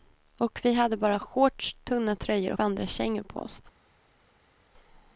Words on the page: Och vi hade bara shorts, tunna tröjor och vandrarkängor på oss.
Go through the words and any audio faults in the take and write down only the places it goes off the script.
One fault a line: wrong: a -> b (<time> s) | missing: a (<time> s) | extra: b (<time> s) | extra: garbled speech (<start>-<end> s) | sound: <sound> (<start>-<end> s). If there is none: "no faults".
missing: och (2.5 s)